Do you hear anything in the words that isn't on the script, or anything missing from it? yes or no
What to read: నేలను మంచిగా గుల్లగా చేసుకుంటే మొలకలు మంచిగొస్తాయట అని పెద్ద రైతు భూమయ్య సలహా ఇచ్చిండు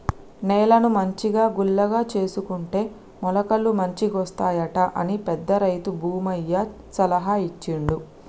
no